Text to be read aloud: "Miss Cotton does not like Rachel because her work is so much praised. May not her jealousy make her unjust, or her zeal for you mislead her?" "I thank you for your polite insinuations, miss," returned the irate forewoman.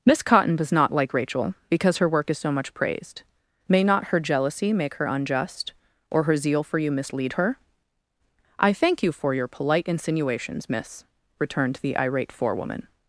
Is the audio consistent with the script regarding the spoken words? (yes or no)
yes